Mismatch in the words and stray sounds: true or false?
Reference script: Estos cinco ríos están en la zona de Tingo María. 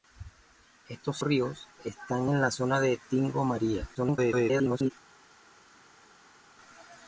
true